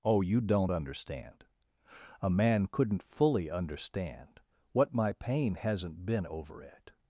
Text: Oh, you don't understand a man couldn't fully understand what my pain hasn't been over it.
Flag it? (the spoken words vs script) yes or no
no